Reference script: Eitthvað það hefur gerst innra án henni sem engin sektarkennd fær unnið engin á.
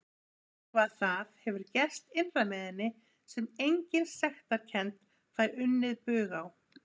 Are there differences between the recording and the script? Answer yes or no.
yes